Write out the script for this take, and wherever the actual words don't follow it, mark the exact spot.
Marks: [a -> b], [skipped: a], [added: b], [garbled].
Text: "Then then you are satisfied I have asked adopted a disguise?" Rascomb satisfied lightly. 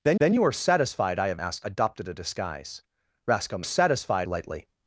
"Then then you are satisfied I have asked adopted a disguise?" Rascomb satisfied lightly.